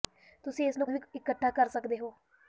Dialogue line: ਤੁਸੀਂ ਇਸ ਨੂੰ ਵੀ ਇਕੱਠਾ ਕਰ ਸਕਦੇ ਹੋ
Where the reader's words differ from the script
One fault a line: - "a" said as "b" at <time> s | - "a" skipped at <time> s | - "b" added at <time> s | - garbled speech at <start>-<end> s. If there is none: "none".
none